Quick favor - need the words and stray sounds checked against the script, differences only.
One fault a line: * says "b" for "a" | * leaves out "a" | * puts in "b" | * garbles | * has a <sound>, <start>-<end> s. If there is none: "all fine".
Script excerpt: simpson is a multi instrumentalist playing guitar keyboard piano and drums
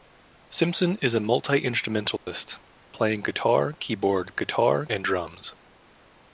* has a dropout, 2.2-2.3 s
* says "guitar" for "piano"